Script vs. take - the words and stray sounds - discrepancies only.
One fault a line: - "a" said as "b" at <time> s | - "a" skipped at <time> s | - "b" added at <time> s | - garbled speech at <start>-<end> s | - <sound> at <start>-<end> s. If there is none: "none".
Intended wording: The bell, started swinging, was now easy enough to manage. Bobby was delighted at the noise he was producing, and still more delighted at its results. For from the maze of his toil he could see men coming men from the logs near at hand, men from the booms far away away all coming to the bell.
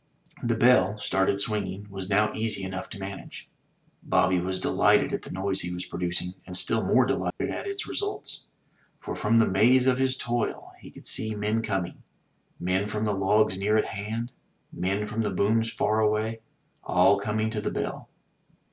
- dropout at 7.3-7.4 s
- "away" skipped at 16.4 s